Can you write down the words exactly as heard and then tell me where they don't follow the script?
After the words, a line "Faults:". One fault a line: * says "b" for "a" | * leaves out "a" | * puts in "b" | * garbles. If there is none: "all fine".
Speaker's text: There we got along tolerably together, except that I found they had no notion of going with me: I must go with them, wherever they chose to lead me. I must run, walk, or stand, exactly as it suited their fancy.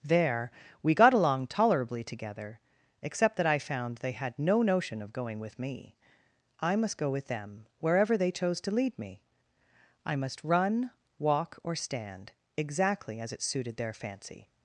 There we got along tolerably together, except that I found they had no notion of going with me: I must go with them, wherever they chose to lead me. I must run, walk, or stand, exactly as it suited their fancy.
Faults:
all fine